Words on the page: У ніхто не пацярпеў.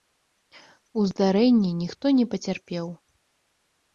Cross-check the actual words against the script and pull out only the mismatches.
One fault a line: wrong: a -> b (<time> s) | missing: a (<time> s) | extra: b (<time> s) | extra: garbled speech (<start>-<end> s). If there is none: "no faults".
extra: здарэнні (1.1 s)